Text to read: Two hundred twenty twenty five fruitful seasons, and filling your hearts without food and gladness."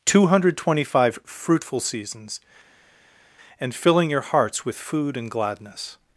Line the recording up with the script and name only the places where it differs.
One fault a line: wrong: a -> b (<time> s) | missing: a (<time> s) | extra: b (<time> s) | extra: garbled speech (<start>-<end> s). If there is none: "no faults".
missing: twenty (0.9 s)
wrong: without -> with (4.6 s)